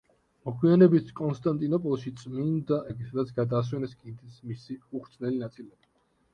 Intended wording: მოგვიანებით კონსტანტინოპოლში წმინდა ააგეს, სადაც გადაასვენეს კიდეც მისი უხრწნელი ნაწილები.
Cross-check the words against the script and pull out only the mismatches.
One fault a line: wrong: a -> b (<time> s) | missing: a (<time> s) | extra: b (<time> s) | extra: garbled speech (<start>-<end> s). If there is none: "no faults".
no faults